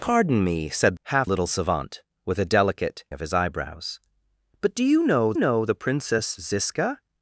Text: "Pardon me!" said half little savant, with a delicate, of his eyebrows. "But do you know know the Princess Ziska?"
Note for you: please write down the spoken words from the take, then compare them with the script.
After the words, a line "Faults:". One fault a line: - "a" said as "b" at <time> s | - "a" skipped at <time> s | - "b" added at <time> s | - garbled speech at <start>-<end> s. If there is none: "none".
"Pardon me!" said half little savant, with a delicate, of his eyebrows. "But do you know know the Princess Ziska?"
Faults:
none